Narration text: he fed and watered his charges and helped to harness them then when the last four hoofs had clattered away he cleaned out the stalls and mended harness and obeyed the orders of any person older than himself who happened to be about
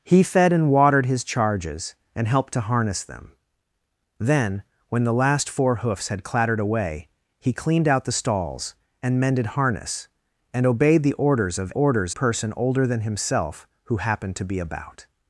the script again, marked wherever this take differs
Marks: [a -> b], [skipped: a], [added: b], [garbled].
he fed and watered his charges and helped to harness them then when the last four hoofs had clattered away he cleaned out the stalls and mended harness and obeyed the orders of [any -> orders] person older than himself who happened to be about